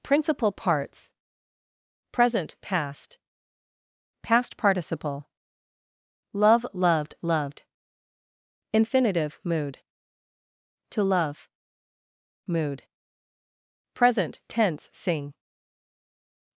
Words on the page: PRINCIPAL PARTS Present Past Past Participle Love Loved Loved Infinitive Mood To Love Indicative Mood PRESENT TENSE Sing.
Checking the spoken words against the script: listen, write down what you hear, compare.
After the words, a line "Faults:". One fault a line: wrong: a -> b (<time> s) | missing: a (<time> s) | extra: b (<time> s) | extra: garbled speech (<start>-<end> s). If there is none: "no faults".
PRINCIPAL PARTS Present Past Past Participle Love Loved Loved Infinitive Mood To Love Mood PRESENT TENSE Sing.
Faults:
missing: Indicative (11.5 s)